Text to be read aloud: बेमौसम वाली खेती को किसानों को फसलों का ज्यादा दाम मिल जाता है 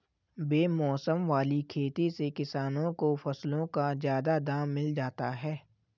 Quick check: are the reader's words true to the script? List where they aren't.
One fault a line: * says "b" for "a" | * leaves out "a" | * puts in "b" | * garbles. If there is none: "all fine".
* says "से" for "को"